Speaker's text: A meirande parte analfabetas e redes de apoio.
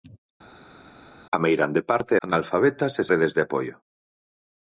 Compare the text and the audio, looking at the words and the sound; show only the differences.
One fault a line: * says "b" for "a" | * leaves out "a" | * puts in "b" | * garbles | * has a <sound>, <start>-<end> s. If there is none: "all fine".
all fine